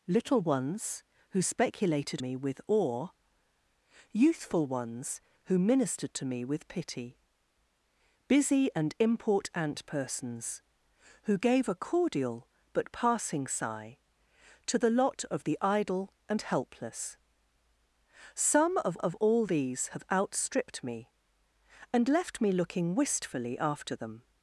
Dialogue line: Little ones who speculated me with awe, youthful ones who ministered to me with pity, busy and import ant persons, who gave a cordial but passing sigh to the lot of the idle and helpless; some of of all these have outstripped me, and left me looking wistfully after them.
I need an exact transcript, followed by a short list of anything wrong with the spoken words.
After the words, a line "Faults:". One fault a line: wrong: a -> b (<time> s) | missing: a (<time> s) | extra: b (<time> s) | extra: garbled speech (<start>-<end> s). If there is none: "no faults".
Little ones who speculated me with awe, youthful ones who ministered to me with pity, busy and import ant persons, who gave a cordial but passing sigh to the lot of the idle and helpless; some of of all these have outstripped me, and left me looking wistfully after them.
Faults:
no faults